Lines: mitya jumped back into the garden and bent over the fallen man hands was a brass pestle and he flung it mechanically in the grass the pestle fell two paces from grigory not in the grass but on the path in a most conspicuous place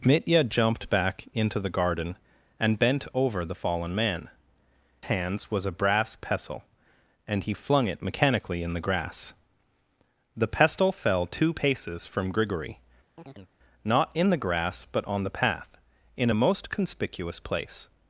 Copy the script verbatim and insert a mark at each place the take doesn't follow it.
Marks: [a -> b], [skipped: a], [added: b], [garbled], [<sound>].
mitya jumped back into the garden and bent over the fallen man hands was a brass pestle and he flung it mechanically in the grass the pestle fell two paces from grigory [chirp] not in the grass but on the path in a most conspicuous place